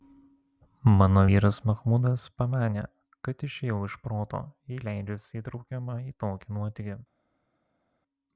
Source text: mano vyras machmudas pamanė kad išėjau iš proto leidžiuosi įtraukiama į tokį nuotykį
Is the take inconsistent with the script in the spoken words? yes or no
yes